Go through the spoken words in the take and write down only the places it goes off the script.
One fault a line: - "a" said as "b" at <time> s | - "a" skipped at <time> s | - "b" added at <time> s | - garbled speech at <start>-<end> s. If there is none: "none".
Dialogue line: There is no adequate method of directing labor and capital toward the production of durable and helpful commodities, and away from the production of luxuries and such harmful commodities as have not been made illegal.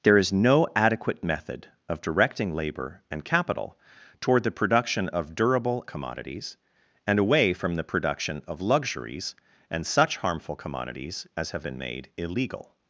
- "and helpful" skipped at 5.8 s
- "not" skipped at 11.7 s